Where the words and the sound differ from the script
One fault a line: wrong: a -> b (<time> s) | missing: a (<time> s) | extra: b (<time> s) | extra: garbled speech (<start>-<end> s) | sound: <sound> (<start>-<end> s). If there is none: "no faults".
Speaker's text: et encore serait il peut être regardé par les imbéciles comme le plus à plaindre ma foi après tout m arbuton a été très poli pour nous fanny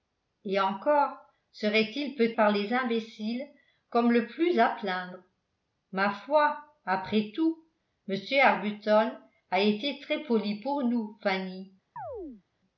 missing: être regardé (2.3 s)
sound: chirp (12.0-12.4 s)